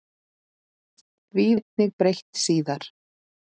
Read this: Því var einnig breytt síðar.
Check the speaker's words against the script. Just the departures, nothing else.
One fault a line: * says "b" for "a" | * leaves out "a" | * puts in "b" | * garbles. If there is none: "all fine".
* leaves out "var"